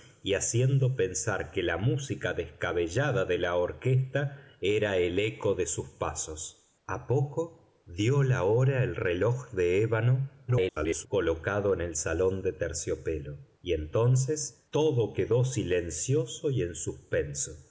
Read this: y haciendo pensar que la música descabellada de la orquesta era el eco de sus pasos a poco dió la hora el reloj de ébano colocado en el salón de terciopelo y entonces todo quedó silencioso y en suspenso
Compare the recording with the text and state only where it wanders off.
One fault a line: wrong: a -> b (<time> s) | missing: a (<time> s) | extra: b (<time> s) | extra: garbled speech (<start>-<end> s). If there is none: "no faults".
extra: garbled speech (10.5-11.1 s)